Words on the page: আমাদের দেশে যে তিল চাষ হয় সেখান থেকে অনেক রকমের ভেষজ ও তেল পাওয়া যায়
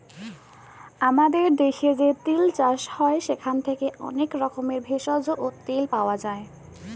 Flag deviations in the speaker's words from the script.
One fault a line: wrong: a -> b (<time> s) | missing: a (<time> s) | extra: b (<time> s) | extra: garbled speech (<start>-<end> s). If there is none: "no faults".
no faults